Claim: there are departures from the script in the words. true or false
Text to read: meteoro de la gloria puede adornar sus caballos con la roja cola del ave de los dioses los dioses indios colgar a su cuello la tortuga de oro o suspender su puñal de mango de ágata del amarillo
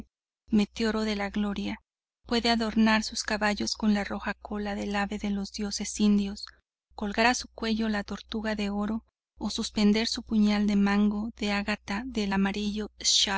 true